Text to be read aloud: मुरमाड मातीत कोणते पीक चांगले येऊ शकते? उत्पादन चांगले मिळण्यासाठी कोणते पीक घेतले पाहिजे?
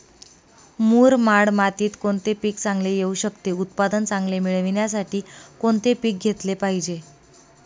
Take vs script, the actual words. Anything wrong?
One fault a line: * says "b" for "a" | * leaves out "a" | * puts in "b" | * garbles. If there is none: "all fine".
all fine